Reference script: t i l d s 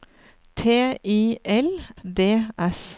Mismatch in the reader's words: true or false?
false